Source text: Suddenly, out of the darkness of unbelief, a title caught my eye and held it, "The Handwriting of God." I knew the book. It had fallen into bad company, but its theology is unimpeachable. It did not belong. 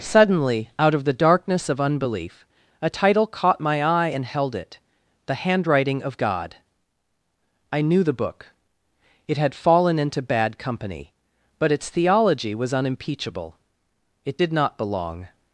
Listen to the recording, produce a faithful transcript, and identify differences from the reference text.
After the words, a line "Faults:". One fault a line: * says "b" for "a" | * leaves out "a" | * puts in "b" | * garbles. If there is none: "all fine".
Suddenly, out of the darkness of unbelief, a title caught my eye and held it, "The Handwriting of God." I knew the book. It had fallen into bad company, but its theology was unimpeachable. It did not belong.
Faults:
* says "was" for "is"